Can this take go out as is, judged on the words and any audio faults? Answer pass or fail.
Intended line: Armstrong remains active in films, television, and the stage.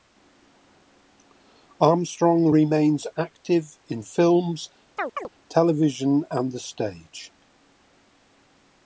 fail